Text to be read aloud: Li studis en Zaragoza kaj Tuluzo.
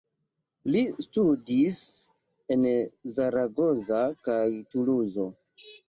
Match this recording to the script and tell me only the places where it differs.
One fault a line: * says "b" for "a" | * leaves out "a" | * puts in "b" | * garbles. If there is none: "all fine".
all fine